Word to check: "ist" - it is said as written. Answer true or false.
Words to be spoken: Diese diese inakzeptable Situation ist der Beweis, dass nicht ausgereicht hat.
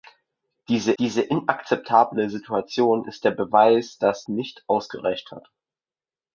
true